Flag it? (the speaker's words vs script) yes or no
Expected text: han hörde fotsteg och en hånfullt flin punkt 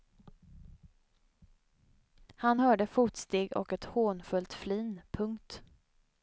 yes